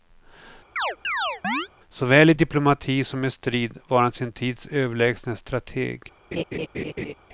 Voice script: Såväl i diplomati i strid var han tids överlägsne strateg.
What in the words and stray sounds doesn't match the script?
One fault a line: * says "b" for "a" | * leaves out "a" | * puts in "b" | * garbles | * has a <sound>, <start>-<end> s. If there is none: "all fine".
* has a chirp, 0.8-1.7 s
* puts in "som"
* puts in "sin"
* has a laugh, 6.3-7.1 s